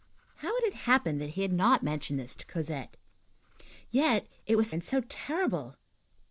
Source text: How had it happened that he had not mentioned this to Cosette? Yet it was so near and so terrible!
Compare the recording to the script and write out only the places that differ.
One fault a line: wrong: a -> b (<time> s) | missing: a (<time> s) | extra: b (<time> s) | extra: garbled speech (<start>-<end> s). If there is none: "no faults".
missing: so near (4.7 s)